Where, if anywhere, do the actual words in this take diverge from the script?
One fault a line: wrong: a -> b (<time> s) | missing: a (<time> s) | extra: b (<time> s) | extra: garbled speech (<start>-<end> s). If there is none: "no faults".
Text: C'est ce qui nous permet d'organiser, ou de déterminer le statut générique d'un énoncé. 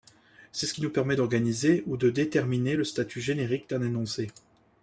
no faults